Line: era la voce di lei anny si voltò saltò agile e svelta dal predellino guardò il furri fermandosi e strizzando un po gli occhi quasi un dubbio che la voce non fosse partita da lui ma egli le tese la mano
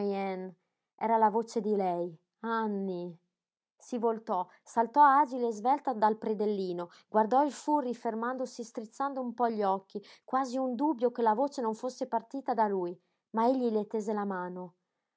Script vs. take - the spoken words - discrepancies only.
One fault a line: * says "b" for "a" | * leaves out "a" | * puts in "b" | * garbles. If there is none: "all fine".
all fine